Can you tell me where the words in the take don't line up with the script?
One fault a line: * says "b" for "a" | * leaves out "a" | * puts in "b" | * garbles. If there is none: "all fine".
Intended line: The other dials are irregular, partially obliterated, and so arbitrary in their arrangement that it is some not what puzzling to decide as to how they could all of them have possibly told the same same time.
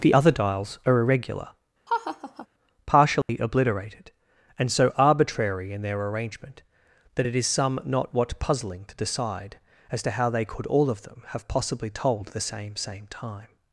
all fine